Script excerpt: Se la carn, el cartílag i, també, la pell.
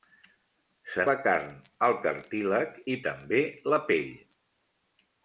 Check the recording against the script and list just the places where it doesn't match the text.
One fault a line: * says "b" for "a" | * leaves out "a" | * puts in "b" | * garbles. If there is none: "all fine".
all fine